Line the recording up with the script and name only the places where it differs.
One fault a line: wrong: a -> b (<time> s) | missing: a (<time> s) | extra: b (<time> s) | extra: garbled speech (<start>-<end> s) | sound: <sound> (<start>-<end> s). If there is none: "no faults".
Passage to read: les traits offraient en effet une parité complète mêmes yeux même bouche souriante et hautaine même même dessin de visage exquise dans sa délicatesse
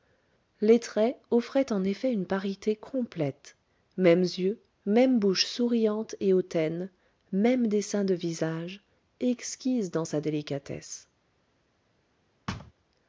missing: même (7.7 s)
sound: thud (12.5-12.7 s)